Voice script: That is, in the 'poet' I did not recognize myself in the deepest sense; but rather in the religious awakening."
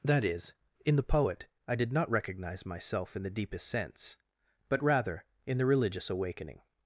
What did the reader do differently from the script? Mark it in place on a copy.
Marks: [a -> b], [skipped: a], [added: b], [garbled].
That is, in the 'poet' I did not recognize myself in the deepest sense; but rather in the religious awakening."